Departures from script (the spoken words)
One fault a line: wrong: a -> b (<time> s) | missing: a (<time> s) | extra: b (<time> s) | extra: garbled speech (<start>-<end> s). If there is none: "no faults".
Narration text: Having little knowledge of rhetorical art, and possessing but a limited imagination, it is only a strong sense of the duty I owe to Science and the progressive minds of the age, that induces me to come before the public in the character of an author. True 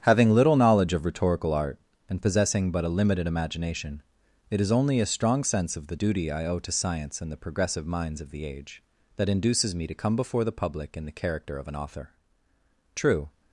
no faults